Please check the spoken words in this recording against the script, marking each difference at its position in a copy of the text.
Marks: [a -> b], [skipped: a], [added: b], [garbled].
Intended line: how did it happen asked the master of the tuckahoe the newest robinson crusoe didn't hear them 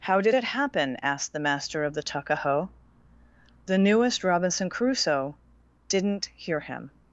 how did it happen asked the master of the tuckahoe the newest robinson crusoe didn't hear [them -> him]